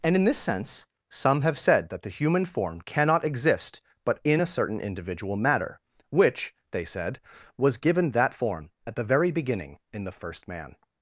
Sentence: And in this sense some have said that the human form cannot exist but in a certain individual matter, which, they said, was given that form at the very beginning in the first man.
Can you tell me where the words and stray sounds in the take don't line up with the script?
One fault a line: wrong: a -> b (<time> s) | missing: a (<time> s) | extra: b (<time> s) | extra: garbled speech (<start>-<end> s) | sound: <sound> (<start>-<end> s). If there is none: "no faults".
no faults